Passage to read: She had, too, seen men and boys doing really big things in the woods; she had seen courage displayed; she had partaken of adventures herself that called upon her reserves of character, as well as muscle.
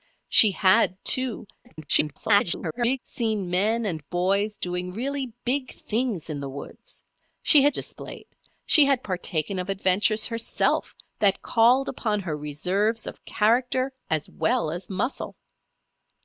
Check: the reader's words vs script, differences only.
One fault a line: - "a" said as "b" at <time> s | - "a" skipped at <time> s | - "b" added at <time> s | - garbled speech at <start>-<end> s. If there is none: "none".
- garbled speech at 1.6-3.0 s
- "seen courage" skipped at 7.8 s